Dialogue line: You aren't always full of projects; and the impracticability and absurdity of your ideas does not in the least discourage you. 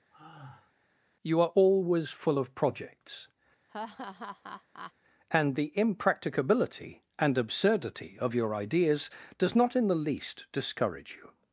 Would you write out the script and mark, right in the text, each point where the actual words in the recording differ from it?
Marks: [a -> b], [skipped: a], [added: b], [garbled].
You [aren't -> are] always full of projects; and the impracticability and absurdity of your ideas does not in the least discourage you.